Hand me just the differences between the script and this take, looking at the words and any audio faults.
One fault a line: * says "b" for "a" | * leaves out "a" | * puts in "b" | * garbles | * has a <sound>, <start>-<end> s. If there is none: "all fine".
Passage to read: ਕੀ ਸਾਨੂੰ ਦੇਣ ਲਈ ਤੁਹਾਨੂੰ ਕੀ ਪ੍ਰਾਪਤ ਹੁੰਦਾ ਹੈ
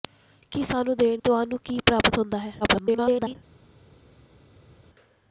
* leaves out "ਲਈ"
* garbles